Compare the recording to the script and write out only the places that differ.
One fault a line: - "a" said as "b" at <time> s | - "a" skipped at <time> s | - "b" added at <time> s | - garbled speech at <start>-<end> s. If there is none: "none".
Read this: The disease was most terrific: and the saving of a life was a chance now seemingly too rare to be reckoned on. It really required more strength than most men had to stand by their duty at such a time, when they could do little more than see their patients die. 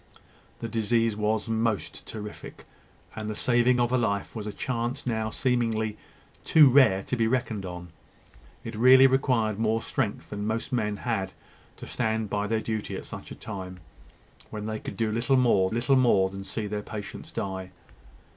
- "little more" added at 15.7 s